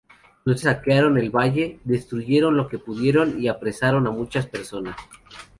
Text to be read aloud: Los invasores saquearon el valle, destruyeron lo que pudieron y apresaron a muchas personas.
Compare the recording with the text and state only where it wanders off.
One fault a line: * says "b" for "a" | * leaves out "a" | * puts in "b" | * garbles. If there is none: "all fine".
* leaves out "invasores"